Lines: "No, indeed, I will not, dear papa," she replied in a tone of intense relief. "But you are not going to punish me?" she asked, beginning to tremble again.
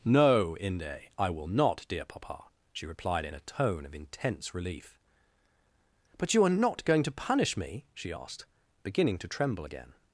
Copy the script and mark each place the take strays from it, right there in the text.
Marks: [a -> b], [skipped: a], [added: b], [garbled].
"No, [indeed, -> inde] I will not, dear papa," she replied in a tone of intense relief. "But you are not going to punish me?" she asked, beginning to tremble again.